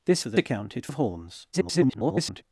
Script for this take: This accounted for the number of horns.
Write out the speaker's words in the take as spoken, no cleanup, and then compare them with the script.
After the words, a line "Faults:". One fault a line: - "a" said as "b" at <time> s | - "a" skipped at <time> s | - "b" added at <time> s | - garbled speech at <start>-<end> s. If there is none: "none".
This for the accounted of horns. [garbled]
Faults:
- "accounted" skipped at 0.2 s
- "number" said as "accounted" at 0.4 s
- garbled speech at 1.5-2.4 s